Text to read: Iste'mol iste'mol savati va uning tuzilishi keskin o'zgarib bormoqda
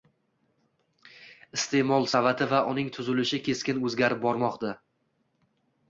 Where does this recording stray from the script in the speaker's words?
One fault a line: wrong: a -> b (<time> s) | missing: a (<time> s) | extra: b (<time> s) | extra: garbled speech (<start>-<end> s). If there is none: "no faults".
missing: iste'mol (2.1 s)